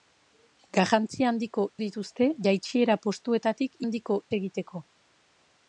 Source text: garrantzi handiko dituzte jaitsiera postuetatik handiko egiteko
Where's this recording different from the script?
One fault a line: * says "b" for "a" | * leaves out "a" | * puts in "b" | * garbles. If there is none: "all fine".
all fine